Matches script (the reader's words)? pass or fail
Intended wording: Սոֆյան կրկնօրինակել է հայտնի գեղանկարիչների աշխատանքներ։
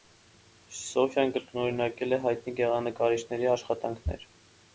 pass